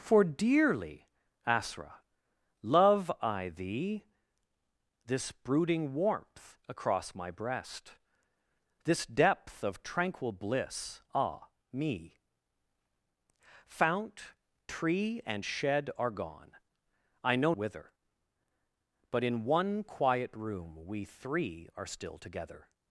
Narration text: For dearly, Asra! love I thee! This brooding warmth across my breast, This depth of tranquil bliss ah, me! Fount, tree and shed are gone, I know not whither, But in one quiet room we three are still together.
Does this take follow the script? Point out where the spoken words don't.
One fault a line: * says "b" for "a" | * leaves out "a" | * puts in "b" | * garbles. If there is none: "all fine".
* leaves out "not"